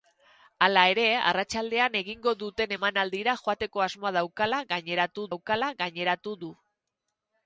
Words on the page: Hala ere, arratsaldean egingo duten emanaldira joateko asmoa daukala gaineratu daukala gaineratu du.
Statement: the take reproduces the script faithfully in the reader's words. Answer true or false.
true